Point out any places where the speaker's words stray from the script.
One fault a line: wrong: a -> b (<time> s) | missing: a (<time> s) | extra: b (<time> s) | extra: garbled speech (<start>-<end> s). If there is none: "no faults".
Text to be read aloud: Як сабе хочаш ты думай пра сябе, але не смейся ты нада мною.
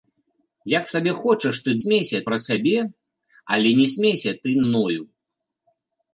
wrong: думай -> смейся (1.8 s)
missing: нада (4.6 s)